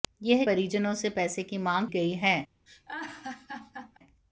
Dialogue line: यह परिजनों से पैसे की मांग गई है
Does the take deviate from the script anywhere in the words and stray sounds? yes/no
yes